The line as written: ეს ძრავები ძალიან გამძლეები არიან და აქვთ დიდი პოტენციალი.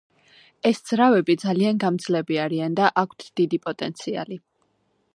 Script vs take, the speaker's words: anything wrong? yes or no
no